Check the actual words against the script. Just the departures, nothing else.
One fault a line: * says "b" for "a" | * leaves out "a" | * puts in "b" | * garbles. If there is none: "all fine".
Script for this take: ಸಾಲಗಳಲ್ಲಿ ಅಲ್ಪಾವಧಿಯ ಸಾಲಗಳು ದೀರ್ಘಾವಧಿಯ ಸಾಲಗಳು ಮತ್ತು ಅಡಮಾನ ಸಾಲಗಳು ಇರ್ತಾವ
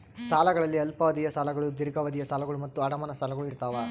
all fine